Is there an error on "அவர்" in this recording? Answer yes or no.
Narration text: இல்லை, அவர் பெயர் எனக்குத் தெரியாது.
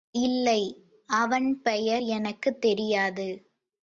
yes